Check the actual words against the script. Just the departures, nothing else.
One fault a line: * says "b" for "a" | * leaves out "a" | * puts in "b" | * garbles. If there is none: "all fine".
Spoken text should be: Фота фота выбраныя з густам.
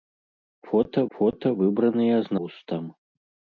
all fine